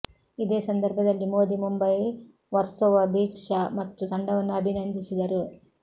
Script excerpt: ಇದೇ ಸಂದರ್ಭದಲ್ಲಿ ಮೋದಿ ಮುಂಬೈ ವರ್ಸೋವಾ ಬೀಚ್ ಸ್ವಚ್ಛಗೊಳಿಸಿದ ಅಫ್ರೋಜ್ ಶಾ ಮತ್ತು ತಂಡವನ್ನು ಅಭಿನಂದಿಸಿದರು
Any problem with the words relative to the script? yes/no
yes